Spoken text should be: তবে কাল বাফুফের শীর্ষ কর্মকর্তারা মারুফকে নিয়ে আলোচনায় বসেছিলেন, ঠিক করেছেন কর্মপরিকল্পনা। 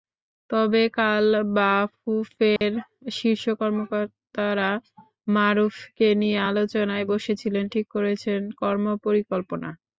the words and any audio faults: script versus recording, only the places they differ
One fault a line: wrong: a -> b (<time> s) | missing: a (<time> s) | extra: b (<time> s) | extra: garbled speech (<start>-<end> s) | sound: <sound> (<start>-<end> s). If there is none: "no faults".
sound: dropout (2.6-2.6 s)